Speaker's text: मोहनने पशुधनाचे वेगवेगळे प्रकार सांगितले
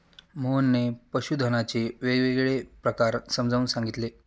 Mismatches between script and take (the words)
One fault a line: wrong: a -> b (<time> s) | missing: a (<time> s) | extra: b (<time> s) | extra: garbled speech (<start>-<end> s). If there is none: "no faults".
extra: समजावून (3.3 s)